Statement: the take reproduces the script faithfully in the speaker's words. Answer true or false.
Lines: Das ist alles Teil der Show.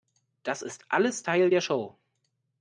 true